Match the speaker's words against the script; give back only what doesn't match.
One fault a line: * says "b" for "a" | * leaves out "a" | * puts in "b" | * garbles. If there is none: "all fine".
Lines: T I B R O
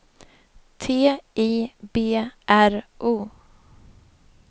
all fine